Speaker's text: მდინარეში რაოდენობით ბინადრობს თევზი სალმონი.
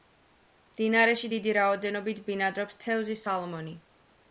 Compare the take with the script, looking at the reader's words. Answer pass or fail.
fail